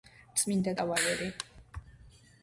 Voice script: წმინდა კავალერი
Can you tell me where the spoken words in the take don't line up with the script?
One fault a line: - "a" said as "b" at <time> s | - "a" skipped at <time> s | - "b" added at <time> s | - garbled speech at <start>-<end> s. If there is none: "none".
none